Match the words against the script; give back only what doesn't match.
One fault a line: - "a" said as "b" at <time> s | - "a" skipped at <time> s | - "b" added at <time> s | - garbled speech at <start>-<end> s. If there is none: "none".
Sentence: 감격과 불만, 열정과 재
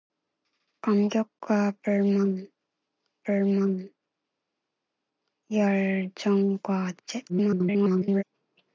- "불만" added at 3.2 s
- garbled speech at 7.3-8.2 s